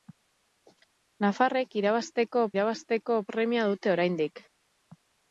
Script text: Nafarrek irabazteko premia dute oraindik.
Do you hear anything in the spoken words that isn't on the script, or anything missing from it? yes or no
yes